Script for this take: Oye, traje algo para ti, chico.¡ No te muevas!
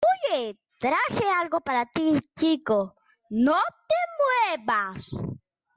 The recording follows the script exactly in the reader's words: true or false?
true